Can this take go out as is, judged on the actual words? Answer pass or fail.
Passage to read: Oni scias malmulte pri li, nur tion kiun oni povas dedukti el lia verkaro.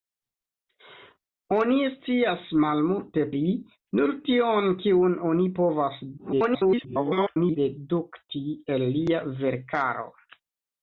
fail